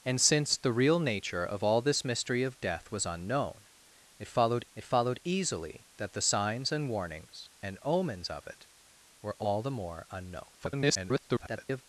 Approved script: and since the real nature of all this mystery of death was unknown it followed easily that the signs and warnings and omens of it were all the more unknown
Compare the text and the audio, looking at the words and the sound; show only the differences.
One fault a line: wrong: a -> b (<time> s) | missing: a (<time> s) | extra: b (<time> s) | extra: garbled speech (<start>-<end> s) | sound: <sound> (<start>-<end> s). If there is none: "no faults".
extra: it followed (4.7 s)
extra: garbled speech (10.6-11.8 s)